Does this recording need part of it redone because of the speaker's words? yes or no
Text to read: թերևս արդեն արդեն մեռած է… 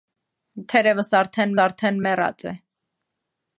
no